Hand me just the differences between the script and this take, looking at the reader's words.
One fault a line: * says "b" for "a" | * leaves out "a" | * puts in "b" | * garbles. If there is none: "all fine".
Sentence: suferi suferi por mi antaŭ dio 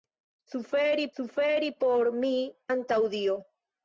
all fine